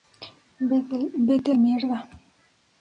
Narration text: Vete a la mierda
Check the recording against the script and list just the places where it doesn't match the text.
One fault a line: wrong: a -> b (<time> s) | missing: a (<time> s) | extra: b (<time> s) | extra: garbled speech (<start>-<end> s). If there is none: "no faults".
missing: la (1.5 s)